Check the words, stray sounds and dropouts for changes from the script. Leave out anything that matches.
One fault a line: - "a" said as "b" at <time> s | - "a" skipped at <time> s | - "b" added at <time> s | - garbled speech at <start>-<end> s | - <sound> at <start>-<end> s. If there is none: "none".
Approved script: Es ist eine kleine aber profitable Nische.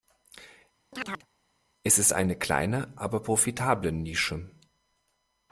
- chirp at 0.9-1.3 s